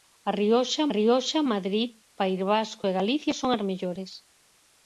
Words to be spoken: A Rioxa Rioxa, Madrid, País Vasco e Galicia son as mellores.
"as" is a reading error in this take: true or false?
false